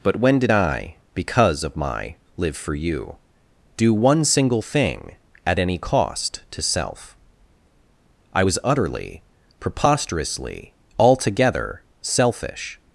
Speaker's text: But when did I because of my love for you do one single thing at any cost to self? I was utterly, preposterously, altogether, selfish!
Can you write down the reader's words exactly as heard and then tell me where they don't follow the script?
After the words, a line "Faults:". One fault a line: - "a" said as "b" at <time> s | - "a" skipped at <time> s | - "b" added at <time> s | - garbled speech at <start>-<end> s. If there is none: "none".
But when did I because of my live for you do one single thing at any cost to self? I was utterly, preposterously, altogether, selfish!
Faults:
- "love" said as "live" at 2.4 s